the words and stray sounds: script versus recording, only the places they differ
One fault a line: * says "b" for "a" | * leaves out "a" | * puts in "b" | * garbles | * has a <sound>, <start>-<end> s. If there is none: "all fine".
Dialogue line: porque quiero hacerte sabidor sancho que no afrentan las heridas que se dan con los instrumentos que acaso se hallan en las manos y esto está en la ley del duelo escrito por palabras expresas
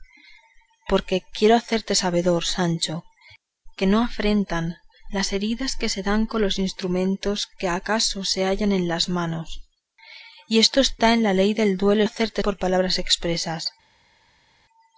* says "hacerte" for "escrito"